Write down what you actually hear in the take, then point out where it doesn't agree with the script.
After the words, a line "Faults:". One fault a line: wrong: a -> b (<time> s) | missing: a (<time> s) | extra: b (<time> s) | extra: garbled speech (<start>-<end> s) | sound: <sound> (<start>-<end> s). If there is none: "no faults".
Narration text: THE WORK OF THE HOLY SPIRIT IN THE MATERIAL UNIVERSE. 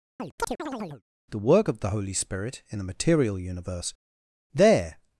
THE WORK OF THE HOLY SPIRIT IN THE MATERIAL UNIVERSE. There
Faults:
sound: chirp (0.2-1.0 s)
extra: There (4.5 s)